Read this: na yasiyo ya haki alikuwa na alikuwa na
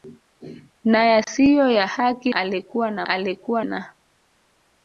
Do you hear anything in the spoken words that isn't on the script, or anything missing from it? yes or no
no